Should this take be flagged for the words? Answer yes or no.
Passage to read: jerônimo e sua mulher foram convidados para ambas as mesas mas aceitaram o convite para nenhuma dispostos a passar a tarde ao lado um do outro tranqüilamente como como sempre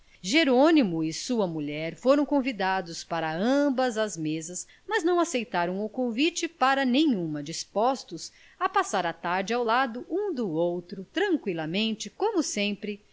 yes